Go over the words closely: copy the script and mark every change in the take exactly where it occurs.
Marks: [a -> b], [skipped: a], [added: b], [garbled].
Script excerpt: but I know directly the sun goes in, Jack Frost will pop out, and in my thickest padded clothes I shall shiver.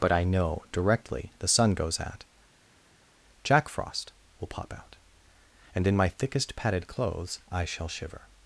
but I know directly the sun goes [in, -> at] Jack Frost will pop out, and in my thickest padded clothes I shall shiver.